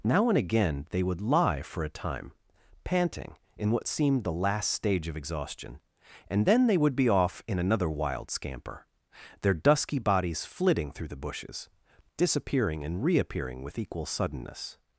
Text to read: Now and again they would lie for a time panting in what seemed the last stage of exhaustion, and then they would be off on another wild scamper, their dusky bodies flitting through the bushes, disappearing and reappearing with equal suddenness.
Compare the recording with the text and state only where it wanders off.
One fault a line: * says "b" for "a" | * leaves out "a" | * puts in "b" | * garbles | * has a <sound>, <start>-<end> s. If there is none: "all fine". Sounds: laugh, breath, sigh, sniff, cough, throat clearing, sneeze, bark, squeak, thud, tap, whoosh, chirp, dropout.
* says "in" for "on"